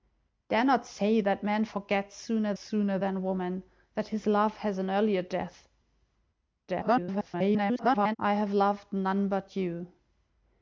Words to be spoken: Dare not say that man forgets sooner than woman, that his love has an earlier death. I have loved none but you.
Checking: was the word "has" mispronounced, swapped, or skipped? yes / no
no